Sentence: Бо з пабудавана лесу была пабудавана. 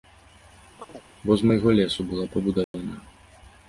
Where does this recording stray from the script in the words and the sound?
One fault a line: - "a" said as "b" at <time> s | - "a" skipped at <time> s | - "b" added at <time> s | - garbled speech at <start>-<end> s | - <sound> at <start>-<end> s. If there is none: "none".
- chirp at 0.8-1.0 s
- "пабудавана" said as "майго" at 1.5 s
- dropout at 2.6-2.7 s